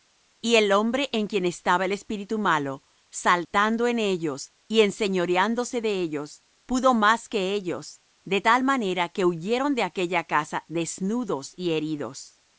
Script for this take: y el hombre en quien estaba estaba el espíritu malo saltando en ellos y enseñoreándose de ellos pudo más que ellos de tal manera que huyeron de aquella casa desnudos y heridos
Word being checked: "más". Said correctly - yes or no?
yes